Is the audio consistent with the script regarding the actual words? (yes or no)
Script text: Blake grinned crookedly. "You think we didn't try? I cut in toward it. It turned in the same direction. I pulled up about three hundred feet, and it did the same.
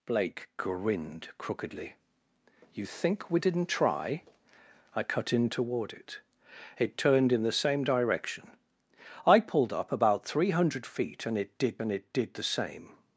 no